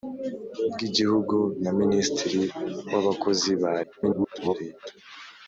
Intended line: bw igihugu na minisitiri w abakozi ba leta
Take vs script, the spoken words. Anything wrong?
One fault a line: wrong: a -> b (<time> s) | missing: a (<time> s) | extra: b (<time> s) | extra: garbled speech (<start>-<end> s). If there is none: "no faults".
extra: garbled speech (3.8-4.5 s)